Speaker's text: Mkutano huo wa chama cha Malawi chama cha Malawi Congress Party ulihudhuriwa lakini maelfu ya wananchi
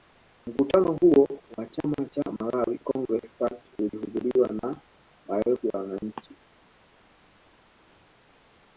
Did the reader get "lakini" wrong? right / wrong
wrong